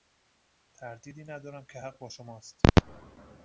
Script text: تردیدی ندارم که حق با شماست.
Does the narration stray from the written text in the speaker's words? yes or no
no